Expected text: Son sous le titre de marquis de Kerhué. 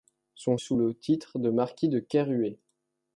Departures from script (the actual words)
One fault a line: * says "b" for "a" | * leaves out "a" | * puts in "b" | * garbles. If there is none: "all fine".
all fine